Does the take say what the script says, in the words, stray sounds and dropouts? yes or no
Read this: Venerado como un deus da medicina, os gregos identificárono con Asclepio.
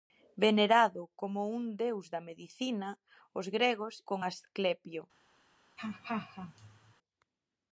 no